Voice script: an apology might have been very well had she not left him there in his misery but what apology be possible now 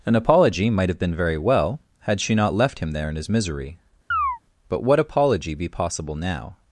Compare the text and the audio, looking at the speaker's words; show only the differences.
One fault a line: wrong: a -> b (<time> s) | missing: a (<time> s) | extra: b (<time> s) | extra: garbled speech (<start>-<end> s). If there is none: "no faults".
no faults